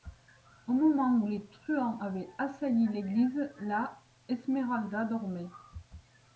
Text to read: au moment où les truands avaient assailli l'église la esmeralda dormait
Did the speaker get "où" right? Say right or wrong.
right